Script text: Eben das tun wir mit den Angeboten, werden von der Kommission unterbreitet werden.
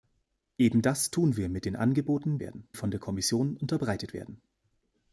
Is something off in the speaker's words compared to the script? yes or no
no